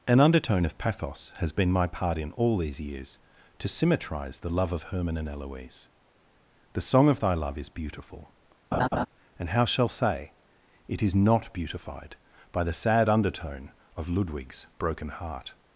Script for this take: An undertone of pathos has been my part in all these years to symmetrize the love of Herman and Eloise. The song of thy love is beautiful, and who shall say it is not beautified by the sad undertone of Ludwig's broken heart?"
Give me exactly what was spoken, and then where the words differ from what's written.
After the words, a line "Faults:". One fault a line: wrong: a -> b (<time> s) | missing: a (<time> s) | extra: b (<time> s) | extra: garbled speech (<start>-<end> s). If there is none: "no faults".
An undertone of pathos has been my part in all these years to symmetrize the love of Herman and Eloise. The song of thy love is beautiful, and how shall say it is not beautified by the sad undertone of Ludwig's broken heart?"
Faults:
wrong: who -> how (9.5 s)